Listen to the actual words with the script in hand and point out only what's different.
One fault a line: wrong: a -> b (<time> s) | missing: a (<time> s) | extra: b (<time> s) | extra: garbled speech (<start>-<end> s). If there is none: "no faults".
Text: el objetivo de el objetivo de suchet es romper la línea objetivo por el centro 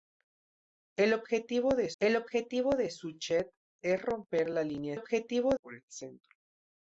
no faults